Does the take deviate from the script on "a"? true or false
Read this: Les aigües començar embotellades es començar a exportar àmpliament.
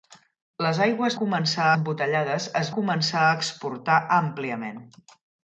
false